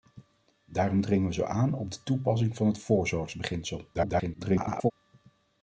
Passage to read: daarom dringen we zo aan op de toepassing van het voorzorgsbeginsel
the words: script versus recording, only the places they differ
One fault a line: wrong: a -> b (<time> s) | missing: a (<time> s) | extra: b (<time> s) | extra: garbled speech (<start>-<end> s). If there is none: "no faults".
extra: garbled speech (3.9-4.9 s)